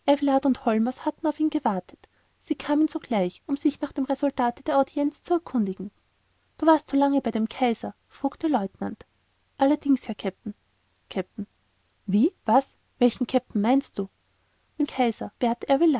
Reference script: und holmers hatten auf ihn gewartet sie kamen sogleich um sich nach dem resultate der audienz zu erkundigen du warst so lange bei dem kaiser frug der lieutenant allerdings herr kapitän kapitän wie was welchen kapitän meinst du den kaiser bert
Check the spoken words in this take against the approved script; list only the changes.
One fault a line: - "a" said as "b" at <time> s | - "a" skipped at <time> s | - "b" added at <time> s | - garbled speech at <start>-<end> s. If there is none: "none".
none